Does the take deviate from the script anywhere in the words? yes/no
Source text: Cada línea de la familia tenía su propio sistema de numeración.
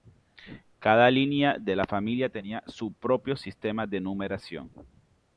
no